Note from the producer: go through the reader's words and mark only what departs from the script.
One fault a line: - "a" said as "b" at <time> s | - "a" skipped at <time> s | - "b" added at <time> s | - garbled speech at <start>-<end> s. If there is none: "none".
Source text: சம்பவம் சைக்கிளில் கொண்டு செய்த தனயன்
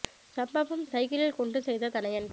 none